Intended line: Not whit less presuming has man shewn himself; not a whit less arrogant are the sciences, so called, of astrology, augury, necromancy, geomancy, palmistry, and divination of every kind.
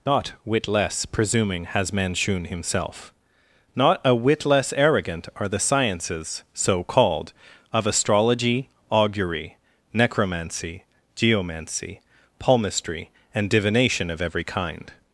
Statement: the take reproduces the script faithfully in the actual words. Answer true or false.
true